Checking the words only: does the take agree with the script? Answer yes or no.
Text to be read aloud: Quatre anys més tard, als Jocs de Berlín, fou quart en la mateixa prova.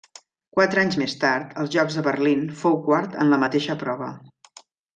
yes